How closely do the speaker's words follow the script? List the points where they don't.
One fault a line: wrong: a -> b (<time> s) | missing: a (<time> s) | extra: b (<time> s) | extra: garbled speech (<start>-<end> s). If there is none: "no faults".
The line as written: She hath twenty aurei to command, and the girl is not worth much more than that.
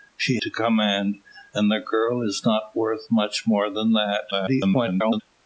missing: hath twenty aurei (0.4 s)
extra: garbled speech (4.3-5.2 s)